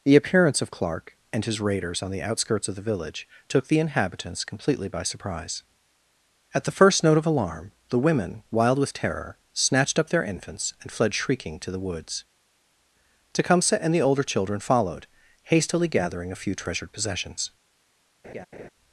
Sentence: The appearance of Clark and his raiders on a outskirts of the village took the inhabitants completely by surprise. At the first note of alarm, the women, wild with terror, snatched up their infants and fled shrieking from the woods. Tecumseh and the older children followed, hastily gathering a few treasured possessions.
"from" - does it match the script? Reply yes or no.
no